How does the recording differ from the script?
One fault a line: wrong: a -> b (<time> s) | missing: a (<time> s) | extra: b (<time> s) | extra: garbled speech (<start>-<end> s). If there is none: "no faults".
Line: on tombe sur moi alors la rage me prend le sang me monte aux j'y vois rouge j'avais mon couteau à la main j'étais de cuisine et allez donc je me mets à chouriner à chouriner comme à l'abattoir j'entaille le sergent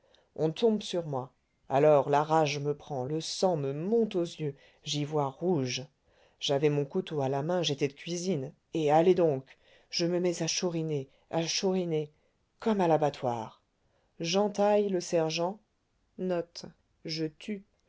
extra: yeux (4.2 s)